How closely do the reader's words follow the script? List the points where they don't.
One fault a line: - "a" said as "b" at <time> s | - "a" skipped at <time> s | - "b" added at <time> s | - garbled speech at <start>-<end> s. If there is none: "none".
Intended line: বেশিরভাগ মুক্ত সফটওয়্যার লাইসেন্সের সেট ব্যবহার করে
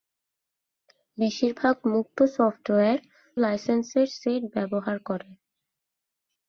none